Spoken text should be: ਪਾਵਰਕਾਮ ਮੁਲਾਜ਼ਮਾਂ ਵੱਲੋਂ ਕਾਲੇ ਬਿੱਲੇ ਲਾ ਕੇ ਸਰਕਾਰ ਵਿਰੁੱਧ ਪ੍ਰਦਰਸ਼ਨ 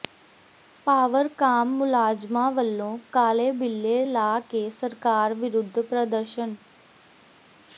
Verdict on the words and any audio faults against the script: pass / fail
pass